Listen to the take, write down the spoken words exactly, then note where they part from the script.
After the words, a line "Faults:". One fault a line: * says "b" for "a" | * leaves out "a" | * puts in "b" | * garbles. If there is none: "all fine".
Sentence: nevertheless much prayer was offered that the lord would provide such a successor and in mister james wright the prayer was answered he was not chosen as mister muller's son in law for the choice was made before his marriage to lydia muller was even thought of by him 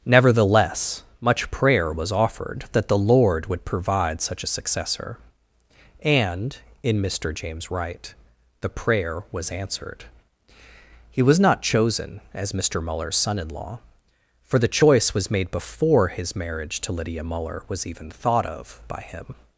nevertheless much prayer was offered that the lord would provide such a successor and in mister james wright the prayer was answered he was not chosen as mister muller's son in law for the choice was made before his marriage to lydia muller was even thought of by him
Faults:
all fine